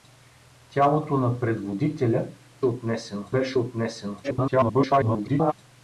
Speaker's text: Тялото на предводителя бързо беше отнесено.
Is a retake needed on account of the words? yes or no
yes